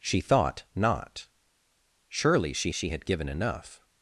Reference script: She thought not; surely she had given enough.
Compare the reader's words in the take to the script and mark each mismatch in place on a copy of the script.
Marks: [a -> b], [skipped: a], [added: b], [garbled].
She thought not; surely she [added: she] had given enough.